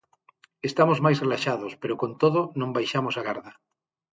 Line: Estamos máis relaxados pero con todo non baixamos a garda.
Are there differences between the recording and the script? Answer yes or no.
no